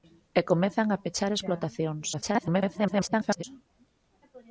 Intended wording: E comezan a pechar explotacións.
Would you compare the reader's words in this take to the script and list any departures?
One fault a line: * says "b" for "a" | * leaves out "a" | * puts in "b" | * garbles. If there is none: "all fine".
* garbles